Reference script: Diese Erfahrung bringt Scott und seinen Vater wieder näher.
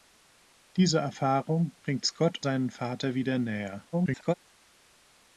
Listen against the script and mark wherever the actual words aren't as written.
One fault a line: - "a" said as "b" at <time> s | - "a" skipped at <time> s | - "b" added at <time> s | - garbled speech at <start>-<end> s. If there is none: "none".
- "und" skipped at 2.4 s
- garbled speech at 3.9-4.3 s